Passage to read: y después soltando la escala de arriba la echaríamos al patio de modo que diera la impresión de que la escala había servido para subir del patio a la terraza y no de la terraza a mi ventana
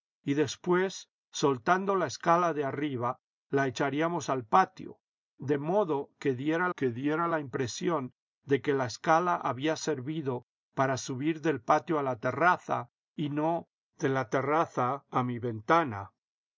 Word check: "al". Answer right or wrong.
right